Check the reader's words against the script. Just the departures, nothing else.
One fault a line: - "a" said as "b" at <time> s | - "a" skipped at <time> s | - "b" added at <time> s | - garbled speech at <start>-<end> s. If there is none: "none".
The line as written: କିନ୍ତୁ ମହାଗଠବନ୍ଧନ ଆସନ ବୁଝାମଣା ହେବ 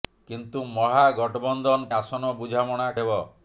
none